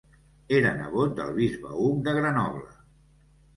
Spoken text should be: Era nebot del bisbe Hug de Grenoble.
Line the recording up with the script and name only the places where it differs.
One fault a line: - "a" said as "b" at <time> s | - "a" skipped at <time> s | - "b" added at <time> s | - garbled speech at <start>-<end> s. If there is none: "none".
none